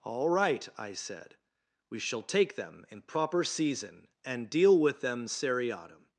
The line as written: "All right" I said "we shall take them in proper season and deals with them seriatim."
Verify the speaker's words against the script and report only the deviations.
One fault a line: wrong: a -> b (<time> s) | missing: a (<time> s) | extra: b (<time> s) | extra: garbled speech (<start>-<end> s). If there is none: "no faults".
wrong: deals -> deal (4.5 s)